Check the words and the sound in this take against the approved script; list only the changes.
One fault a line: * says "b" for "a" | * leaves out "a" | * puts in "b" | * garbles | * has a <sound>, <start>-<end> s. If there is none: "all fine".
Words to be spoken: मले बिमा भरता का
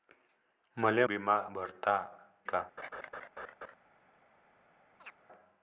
* has a laugh, 2.8-3.7 s
* has a chirp, 5.0-5.1 s